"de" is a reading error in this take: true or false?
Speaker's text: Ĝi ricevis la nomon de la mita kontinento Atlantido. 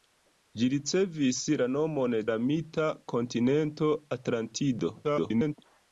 true